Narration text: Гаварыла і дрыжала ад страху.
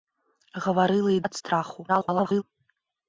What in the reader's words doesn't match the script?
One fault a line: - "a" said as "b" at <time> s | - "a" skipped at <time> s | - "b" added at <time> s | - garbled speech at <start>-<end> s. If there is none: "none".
- "дрыжала" skipped at 1.2 s
- garbled speech at 1.9-2.4 s